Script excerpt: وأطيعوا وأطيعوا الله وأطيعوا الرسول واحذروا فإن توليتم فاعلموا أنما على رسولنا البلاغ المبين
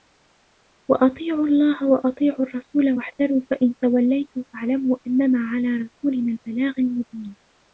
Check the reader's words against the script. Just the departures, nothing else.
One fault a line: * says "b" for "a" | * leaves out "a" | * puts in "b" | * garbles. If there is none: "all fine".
* leaves out "وأطيعوا"